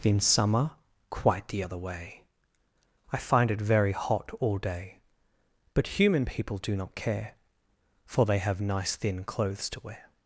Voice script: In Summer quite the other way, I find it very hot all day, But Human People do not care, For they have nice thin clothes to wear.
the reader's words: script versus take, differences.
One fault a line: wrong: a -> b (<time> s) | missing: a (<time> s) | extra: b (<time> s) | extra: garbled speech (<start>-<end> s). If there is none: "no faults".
no faults